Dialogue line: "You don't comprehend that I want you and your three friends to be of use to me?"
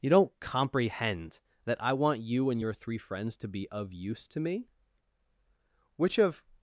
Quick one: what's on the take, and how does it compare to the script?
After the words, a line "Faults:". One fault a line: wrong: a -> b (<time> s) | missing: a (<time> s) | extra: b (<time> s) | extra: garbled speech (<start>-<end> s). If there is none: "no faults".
"You don't comprehend that I want you and your three friends to be of use to me?" "Which of
Faults:
extra: Which of (6.0 s)